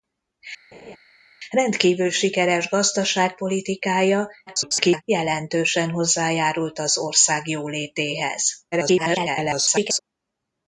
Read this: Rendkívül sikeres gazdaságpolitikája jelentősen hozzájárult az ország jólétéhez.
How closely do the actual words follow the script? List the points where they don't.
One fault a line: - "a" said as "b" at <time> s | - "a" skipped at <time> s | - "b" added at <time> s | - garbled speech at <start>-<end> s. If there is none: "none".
- garbled speech at 4.5-5.0 s
- garbled speech at 8.7-10.0 s